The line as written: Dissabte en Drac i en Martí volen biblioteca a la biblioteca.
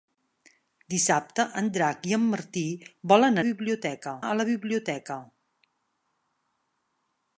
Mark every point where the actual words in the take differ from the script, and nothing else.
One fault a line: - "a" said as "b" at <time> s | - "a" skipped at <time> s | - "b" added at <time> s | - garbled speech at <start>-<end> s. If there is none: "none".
none